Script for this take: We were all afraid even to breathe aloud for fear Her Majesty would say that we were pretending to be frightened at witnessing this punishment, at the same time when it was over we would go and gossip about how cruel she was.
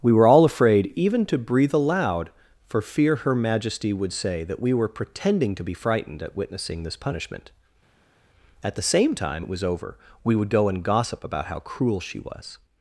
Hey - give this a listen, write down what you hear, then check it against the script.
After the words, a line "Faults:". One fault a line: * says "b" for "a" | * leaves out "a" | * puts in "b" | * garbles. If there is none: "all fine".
We were all afraid even to breathe aloud for fear Her Majesty would say that we were pretending to be frightened at witnessing this punishment, at the same time it was over we would go and gossip about how cruel she was.
Faults:
* leaves out "when"